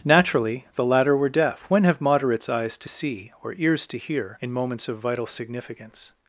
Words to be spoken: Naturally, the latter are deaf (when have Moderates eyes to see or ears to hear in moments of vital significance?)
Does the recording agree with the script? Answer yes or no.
no